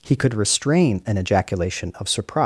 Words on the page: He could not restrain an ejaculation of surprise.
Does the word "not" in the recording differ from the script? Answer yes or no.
yes